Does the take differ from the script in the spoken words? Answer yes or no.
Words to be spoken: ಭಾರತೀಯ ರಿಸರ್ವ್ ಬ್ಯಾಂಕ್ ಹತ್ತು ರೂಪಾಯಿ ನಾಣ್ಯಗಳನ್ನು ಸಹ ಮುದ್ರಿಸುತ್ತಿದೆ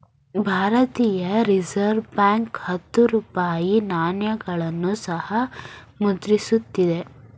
no